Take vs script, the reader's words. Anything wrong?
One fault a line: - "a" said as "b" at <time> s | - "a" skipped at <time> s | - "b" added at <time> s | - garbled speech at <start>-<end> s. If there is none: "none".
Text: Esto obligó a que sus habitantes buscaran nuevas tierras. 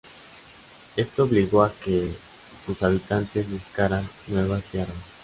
none